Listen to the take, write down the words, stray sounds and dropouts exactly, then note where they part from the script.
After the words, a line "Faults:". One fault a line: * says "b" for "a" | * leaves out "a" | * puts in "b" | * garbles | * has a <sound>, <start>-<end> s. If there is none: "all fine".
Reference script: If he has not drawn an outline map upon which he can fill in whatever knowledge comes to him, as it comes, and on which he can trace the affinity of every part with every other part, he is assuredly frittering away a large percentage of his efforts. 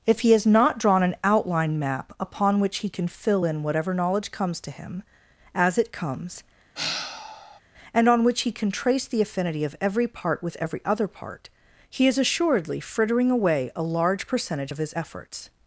If he has not drawn an outline map upon which he can fill in whatever knowledge comes to him, as it comes, and on which he can trace the affinity of every part with every other part, he is assuredly frittering away a large percentage of his efforts.
Faults:
* has a sigh, 6.8-7.6 s